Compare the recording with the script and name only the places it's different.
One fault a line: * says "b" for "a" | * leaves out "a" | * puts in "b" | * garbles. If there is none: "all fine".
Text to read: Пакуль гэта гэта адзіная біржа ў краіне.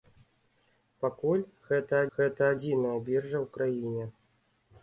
all fine